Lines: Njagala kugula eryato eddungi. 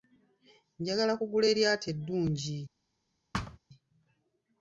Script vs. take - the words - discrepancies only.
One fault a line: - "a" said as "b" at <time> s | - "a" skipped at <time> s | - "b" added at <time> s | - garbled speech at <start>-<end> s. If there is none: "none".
none